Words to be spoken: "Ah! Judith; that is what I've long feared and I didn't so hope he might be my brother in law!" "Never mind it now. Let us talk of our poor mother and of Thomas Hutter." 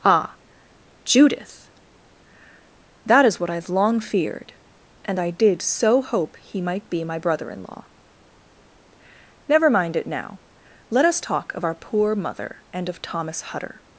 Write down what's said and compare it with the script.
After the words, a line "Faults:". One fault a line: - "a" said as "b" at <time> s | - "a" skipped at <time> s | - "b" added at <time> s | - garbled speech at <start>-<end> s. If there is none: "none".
"Ah! Judith; that is what I've long feared and I did so hope he might be my brother in law!" "Never mind it now. Let us talk of our poor mother and of Thomas Hutter."
Faults:
- "didn't" said as "did" at 5.3 s